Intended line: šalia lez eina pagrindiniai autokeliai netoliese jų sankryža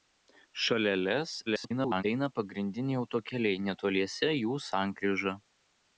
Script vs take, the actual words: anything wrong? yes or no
yes